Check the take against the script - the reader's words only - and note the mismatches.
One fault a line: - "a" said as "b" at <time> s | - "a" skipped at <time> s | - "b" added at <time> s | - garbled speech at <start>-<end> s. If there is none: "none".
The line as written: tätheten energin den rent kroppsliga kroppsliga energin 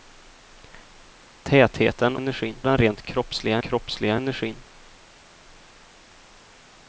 none